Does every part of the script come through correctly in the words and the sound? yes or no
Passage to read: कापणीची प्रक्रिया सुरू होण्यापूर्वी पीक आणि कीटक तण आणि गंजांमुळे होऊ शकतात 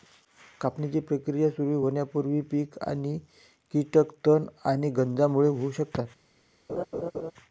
no